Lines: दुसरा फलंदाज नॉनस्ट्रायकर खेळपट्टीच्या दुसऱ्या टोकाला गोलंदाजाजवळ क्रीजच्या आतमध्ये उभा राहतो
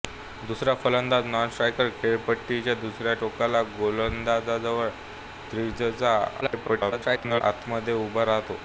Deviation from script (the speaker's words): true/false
true